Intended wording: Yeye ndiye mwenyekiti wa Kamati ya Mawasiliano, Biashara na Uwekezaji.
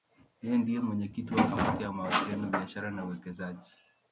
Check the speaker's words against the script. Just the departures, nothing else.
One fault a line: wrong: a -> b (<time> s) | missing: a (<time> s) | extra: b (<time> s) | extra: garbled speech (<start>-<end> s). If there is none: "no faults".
no faults